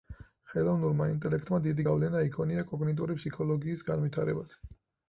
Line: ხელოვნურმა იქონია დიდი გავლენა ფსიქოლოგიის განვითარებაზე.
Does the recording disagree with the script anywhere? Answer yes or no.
yes